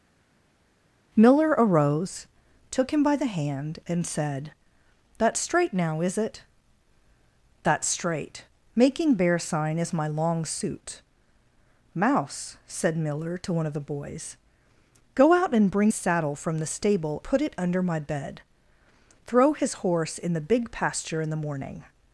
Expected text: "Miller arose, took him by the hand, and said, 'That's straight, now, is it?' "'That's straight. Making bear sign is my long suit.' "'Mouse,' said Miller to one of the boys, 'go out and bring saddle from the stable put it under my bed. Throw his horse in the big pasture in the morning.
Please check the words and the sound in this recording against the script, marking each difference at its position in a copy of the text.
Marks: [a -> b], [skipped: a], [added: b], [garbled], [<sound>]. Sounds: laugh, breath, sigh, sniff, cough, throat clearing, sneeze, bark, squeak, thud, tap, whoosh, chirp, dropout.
"Miller arose, took him by the hand, and said, 'That's straight, now, is it?' "'That's straight. Making bear sign is my long suit.' "'Mouse,' said Miller to one of the boys, 'go out and bring saddle from the stable put it under my bed. Throw his horse in the big pasture in the morning.